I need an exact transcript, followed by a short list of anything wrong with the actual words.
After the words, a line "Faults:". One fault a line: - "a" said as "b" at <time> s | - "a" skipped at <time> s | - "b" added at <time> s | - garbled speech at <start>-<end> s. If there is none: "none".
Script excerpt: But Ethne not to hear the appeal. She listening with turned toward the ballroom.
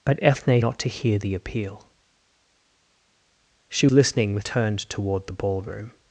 But Ethne not to hear the appeal. She listening with turned toward the ballroom.
Faults:
none